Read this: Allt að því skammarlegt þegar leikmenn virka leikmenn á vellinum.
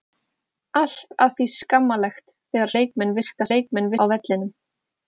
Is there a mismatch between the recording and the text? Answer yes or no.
no